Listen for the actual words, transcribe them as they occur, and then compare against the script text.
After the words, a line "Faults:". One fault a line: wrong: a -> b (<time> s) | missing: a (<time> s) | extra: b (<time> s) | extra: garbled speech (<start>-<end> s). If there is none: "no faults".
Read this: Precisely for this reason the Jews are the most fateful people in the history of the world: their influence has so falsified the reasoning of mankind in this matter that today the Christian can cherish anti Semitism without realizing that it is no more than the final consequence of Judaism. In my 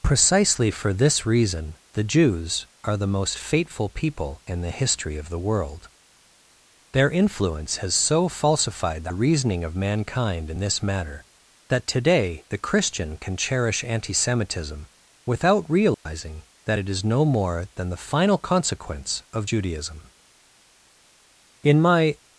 Precisely for this reason the Jews are the most fateful people in the history of the world: their influence has so falsified the reasoning of mankind in this matter that today the Christian can cherish anti Semitism without realizing that it is no more than the final consequence of Judaism. In my
Faults:
no faults